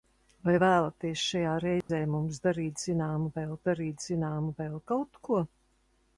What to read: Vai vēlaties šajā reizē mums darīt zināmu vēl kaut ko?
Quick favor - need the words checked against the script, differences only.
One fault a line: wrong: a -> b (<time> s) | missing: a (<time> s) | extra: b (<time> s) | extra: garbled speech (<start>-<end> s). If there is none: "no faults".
extra: darīt zināmu vēl (3.7 s)